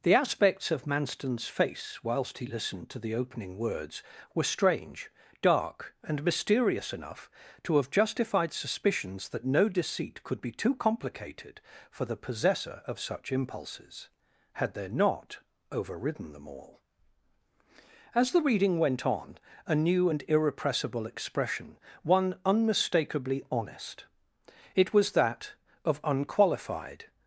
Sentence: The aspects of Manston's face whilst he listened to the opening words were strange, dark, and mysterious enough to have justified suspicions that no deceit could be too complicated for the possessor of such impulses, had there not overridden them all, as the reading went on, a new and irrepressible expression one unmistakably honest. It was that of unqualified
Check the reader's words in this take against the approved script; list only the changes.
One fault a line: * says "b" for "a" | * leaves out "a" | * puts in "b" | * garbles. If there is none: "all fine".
all fine